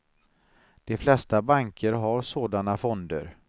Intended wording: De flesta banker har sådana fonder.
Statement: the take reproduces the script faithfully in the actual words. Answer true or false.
true